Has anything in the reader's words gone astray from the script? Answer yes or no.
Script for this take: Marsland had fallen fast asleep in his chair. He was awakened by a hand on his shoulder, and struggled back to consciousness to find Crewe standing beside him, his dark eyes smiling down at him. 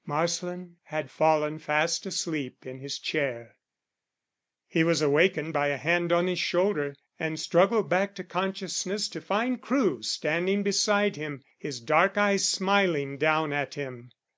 no